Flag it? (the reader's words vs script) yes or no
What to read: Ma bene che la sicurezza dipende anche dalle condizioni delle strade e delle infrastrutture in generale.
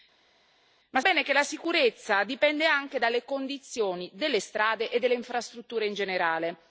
no